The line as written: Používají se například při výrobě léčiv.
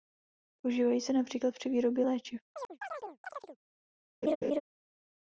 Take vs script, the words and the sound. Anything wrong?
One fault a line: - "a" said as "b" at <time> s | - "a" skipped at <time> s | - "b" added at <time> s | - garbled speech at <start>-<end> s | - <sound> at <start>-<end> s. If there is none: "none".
- chirp at 2.5-3.6 s
- laugh at 4.2-4.6 s